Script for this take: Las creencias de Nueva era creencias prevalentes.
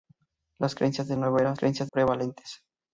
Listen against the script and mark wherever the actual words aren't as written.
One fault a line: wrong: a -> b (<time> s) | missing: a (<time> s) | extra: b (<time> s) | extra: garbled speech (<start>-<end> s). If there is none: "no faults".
no faults